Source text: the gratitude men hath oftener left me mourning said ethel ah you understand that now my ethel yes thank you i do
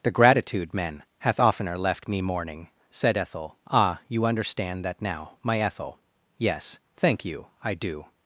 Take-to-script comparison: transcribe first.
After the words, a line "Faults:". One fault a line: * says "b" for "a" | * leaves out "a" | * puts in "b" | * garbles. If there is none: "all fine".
the gratitude men hath oftener left me mourning said ethel ah you understand that now my ethel yes thank you i do
Faults:
all fine